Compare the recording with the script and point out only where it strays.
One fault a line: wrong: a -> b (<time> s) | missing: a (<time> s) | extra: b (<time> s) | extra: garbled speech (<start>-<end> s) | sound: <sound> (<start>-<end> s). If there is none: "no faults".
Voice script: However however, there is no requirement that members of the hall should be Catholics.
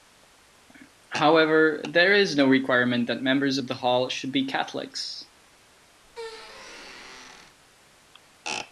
missing: however (1.8 s)
sound: squeak (6.0-7.6 s)